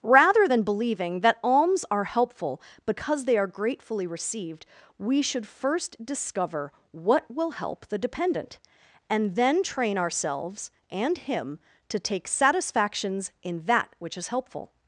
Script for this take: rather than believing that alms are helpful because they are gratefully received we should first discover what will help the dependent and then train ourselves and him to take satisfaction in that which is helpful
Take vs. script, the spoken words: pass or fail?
fail